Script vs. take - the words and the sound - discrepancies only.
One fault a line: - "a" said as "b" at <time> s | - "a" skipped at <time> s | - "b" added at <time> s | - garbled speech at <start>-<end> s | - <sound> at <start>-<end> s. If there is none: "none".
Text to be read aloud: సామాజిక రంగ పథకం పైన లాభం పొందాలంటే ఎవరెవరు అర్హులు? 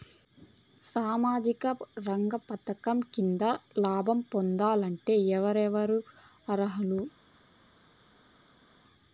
- "పైన" said as "కింద" at 3.1 s